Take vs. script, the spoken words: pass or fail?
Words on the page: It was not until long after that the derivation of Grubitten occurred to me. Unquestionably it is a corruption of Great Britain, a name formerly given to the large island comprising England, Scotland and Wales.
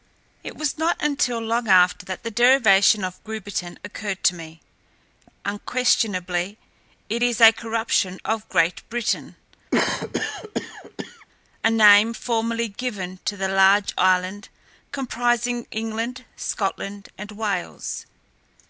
pass